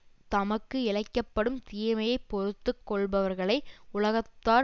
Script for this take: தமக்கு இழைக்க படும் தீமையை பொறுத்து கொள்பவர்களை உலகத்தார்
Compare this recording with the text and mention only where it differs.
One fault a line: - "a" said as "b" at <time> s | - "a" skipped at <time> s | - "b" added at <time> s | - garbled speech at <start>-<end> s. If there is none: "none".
none